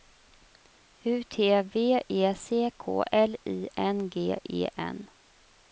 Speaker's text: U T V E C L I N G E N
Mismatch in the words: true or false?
true